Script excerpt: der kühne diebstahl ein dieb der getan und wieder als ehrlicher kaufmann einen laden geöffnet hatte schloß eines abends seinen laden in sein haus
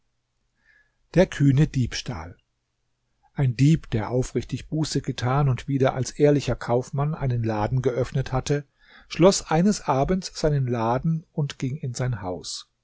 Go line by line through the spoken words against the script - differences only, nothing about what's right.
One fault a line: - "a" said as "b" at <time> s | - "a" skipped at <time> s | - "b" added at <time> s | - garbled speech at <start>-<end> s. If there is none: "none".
- "aufrichtig buße" added at 4.1 s
- "und ging" added at 11.3 s